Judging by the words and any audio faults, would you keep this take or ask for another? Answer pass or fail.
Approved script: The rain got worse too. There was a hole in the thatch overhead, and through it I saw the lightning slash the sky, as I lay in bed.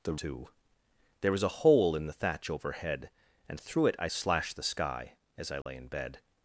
fail